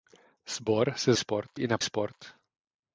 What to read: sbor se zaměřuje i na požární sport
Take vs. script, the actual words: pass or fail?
fail